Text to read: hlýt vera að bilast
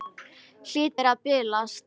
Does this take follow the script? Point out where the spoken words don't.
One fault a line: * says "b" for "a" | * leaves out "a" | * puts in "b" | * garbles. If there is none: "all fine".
all fine